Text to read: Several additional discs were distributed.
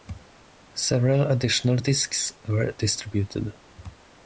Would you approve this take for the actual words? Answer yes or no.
yes